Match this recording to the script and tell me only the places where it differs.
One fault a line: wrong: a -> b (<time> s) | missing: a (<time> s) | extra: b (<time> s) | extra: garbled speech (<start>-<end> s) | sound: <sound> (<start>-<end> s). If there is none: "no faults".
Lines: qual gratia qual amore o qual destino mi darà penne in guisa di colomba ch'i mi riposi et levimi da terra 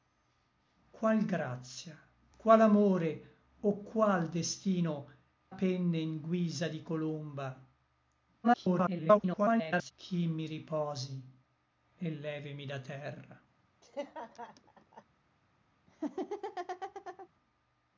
missing: mi darà (5.1 s)
extra: garbled speech (8.4-9.9 s)
sound: laugh (13.8-15.0 s)
sound: laugh (15.9-17.3 s)